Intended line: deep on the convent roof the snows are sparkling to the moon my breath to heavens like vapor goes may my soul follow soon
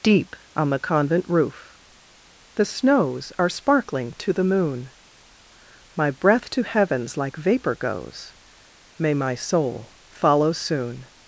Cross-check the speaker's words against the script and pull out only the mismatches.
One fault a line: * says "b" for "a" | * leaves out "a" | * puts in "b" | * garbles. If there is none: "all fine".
all fine